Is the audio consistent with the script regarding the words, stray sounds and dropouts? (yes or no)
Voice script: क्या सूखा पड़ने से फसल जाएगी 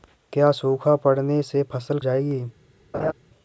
no